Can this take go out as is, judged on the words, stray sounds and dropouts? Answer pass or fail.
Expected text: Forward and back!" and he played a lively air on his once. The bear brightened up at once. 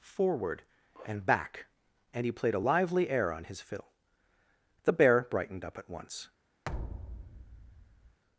fail